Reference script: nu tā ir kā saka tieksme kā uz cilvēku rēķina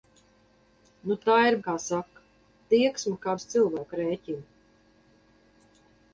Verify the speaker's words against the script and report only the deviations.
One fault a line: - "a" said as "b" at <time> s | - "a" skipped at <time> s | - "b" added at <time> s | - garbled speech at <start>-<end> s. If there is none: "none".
none